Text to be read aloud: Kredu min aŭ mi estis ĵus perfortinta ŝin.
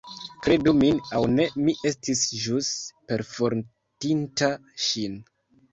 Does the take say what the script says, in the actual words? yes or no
no